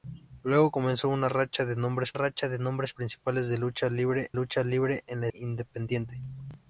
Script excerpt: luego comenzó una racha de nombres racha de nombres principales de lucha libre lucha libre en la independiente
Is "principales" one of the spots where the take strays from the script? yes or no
no